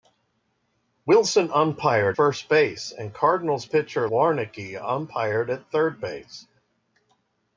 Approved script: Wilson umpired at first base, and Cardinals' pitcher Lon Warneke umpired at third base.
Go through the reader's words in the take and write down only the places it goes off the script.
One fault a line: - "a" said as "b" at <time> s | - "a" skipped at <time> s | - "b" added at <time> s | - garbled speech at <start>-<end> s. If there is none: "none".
- "at" skipped at 2.2 s
- "Lon" skipped at 4.1 s